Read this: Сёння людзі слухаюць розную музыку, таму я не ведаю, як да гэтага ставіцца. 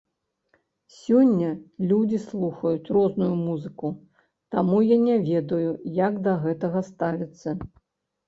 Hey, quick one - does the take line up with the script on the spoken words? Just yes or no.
yes